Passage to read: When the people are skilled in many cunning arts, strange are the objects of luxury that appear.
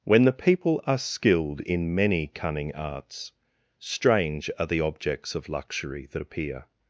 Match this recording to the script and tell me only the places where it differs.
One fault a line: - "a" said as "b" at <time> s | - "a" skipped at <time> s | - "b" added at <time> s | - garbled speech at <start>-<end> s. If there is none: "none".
none